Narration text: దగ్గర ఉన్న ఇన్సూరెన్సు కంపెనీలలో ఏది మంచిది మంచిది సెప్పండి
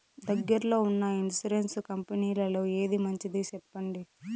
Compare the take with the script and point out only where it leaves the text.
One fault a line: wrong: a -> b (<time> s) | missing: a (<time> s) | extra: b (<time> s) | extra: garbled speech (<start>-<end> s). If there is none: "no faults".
extra: లో (0.7 s)
missing: మంచిది (3.4 s)